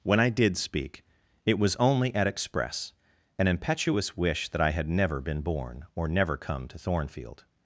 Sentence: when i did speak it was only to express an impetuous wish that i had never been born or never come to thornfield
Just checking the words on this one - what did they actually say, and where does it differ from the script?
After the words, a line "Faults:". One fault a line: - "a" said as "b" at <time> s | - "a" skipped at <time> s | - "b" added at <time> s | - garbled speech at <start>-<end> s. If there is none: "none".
when i did speak it was only at express an impetuous wish that i had never been born or never come to thornfield
Faults:
- "to" said as "at" at 2.1 s